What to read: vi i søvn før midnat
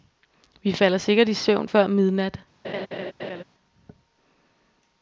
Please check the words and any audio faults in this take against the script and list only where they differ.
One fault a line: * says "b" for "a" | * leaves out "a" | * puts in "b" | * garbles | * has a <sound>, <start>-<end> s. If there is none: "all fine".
* puts in "falder sikkert"
* has a laugh, 2.6-3.4 s